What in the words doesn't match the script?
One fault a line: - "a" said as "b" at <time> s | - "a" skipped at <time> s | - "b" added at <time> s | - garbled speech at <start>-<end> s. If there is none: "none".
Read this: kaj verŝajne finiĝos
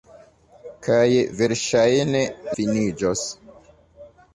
none